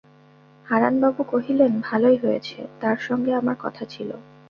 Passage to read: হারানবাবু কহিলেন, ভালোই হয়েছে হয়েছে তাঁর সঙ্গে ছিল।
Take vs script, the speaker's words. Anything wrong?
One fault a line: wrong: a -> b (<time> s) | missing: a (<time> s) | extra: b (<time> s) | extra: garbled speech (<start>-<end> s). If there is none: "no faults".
missing: হয়েছে (2.6 s)
extra: আমার কথা (3.4 s)